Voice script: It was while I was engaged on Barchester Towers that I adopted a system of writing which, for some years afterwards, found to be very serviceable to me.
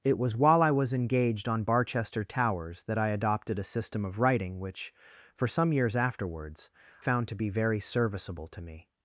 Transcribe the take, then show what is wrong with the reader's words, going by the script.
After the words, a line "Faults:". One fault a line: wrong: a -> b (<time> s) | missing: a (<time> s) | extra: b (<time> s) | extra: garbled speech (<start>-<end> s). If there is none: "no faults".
It was while I was engaged on Barchester Towers that I adopted a system of writing which, for some years afterwards, found to be very serviceable to me.
Faults:
no faults